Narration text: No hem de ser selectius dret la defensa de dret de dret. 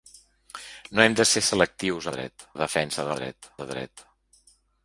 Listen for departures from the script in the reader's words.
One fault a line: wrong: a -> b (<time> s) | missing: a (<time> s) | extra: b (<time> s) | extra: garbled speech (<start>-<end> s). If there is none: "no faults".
no faults